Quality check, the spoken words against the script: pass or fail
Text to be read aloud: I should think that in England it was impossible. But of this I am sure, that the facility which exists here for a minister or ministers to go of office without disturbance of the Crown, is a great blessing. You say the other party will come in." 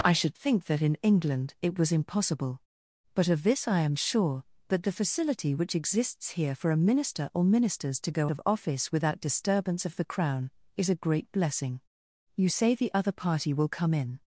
pass